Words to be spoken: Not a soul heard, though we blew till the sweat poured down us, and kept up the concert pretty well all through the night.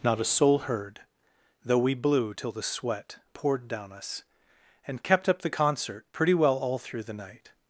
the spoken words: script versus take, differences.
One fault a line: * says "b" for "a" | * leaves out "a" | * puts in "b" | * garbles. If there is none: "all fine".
all fine